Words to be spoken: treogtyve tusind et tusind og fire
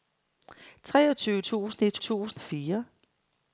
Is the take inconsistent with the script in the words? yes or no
no